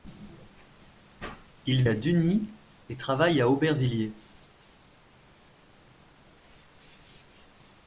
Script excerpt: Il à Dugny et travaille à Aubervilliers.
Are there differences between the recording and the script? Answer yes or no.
no